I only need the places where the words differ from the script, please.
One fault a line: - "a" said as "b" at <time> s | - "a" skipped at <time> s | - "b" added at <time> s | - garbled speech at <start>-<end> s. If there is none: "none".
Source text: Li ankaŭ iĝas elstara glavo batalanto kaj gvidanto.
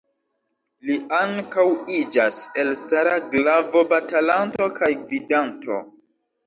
none